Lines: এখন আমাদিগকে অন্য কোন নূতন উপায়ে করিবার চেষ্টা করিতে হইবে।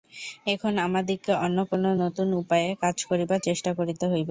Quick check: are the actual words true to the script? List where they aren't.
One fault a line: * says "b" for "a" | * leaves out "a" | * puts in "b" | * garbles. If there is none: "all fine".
* puts in "কাজ"